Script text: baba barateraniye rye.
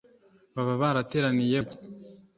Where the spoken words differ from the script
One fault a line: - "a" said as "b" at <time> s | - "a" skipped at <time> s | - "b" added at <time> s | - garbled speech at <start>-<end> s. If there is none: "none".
none